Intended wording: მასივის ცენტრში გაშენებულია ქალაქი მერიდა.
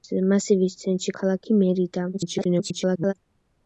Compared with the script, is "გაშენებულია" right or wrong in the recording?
wrong